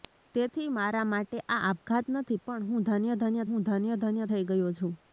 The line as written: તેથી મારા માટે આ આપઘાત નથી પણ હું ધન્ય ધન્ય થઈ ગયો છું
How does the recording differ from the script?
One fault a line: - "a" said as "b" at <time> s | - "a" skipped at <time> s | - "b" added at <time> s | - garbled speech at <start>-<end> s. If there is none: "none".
- "હું ધન્ય ધન્ય" added at 3.5 s